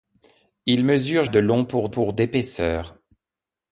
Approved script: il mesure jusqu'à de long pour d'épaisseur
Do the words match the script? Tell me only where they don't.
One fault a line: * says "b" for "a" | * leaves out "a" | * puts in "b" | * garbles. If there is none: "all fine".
* leaves out "jusqu'à"
* puts in "pour"